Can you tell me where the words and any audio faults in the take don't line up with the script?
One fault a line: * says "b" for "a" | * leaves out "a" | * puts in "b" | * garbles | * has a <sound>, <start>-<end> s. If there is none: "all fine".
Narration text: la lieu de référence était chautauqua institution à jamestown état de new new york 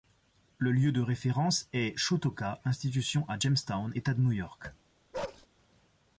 * says "le" for "la"
* says "est" for "était"
* leaves out "new"
* has a bark, 5.1-5.5 s